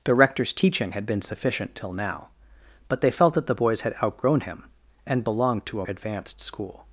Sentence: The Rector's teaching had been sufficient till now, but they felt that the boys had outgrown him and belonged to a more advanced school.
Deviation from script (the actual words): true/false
true